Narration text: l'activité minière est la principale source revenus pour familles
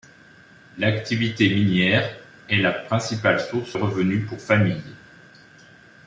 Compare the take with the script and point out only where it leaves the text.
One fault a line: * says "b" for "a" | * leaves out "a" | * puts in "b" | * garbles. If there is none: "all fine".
all fine